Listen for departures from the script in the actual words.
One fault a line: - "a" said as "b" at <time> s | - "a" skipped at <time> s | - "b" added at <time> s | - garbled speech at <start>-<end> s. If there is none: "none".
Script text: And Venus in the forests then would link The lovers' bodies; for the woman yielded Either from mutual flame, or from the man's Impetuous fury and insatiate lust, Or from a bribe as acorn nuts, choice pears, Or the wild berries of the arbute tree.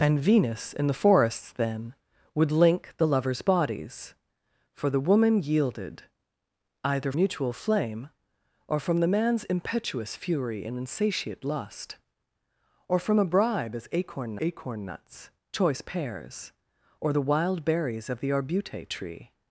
- "from" skipped at 7.1 s
- "acorn" added at 14.4 s